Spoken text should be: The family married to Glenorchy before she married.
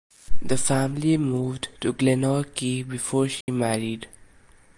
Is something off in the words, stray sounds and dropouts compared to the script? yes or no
yes